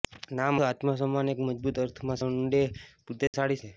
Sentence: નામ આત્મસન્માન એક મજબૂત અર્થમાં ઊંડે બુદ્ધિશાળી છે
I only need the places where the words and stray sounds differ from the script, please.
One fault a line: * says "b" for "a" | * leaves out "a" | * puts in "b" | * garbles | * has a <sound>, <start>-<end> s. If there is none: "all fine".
* has a dropout, 3.3-3.3 s